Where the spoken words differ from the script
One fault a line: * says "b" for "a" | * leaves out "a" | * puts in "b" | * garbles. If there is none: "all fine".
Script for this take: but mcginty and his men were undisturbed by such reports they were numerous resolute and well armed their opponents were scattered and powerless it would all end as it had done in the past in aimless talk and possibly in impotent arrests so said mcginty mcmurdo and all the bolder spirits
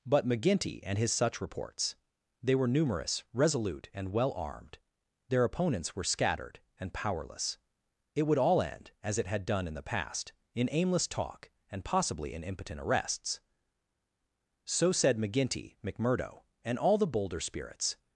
* leaves out "men were undisturbed by"